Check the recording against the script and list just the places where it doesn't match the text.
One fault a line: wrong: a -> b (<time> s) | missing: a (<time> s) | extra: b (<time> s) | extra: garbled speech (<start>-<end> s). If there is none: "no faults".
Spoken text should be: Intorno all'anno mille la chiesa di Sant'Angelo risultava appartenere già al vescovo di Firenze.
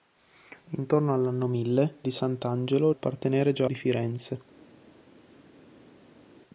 missing: la chiesa (1.9 s)
missing: risultava (2.9 s)
missing: al vescovo (3.7 s)